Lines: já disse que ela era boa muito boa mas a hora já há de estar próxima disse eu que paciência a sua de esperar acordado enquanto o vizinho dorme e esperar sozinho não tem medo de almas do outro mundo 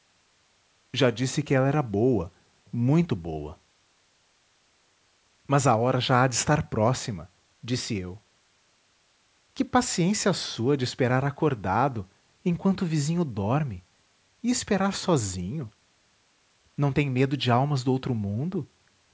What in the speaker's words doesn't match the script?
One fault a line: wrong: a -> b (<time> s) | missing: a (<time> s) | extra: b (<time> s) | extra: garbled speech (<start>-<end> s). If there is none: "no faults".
no faults